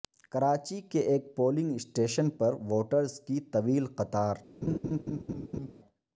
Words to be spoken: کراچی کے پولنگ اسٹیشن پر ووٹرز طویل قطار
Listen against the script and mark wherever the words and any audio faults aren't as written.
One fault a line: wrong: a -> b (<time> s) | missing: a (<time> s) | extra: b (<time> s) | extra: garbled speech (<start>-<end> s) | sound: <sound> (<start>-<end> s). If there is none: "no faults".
extra: ایک (1.1 s)
extra: کی (3.2 s)
sound: laugh (4.6-5.7 s)